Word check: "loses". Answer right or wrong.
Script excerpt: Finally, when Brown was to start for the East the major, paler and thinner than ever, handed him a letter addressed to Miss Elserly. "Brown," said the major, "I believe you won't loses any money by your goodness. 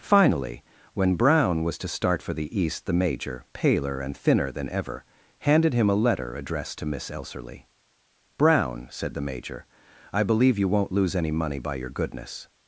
wrong